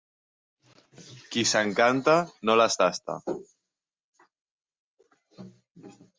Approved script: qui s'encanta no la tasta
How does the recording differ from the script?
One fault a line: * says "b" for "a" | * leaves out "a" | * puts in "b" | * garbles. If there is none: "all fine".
* says "les" for "la"